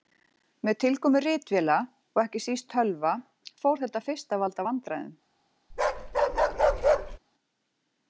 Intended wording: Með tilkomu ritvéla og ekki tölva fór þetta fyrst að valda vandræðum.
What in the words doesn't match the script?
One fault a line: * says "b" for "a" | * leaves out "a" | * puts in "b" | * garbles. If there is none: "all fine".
* puts in "síst"